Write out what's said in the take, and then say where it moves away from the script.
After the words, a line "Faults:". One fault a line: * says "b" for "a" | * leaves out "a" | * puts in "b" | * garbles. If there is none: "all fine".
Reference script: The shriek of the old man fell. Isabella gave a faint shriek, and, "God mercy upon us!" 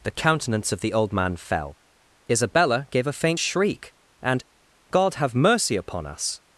The countenance of the old man fell. Isabella gave a faint shriek, and, "God have mercy upon us!"
Faults:
* says "countenance" for "shriek"
* puts in "have"